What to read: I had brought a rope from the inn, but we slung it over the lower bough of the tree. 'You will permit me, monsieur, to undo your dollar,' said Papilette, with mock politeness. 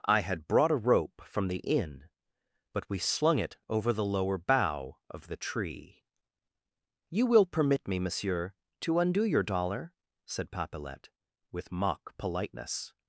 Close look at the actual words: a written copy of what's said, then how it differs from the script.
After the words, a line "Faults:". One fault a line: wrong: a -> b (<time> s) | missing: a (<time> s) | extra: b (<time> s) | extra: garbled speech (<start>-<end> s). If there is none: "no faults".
I had brought a rope from the inn, but we slung it over the lower bough of the tree. 'You will permit me, monsieur, to undo your dollar,' said Papilette, with mock politeness.
Faults:
no faults